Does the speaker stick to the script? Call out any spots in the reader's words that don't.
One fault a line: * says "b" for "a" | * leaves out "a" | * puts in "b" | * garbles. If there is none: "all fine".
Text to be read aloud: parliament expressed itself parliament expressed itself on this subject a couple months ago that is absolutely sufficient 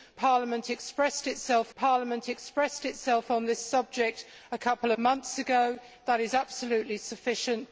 all fine